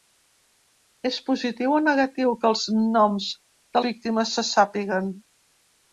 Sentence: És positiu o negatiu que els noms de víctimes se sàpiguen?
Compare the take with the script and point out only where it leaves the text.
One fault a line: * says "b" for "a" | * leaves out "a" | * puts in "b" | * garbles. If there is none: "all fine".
all fine